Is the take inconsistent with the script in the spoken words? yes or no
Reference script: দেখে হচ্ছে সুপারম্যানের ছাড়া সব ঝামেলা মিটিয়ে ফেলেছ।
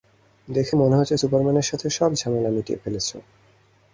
yes